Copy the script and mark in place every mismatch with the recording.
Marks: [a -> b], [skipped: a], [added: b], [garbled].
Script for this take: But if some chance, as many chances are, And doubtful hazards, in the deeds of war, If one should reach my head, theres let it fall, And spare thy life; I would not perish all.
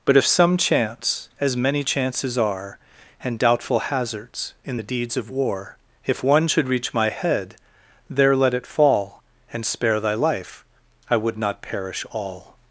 But if some chance, as many chances are, And doubtful hazards, in the deeds of war, If one should reach my head, [theres -> there] let it fall, And spare thy life; I would not perish all.